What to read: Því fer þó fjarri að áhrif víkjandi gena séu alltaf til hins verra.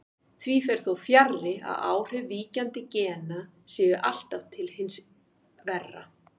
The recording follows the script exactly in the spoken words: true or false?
true